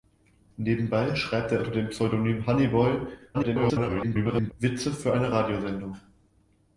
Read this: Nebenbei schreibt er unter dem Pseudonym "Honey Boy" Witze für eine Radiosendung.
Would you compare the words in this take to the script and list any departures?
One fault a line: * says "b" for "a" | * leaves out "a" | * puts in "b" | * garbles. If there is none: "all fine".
* garbles